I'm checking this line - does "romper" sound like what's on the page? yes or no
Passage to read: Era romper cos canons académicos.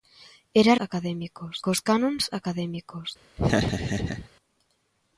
no